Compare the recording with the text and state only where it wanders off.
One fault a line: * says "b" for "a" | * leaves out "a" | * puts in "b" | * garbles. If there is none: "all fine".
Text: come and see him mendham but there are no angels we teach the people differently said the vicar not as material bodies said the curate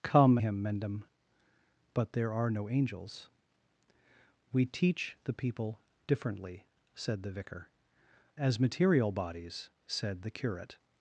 * leaves out "and see"
* leaves out "not"